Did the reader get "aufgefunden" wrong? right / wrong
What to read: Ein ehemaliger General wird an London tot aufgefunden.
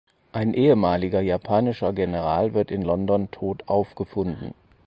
right